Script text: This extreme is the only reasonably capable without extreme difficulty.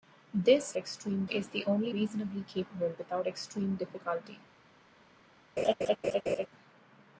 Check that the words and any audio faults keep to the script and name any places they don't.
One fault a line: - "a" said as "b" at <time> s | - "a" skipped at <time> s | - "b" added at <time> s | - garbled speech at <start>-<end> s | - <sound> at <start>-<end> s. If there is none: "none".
- laugh at 5.6-6.5 s